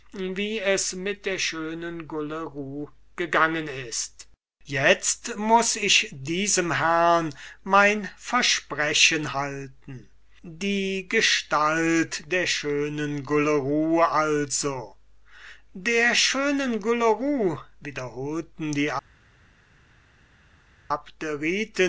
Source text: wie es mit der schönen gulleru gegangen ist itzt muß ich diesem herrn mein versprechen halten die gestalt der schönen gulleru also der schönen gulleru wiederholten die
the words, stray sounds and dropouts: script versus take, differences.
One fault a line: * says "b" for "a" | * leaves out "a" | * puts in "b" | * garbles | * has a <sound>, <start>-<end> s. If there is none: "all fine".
all fine